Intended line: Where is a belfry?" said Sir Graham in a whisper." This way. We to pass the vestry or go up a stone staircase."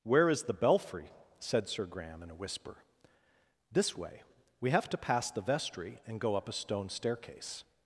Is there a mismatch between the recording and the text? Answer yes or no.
yes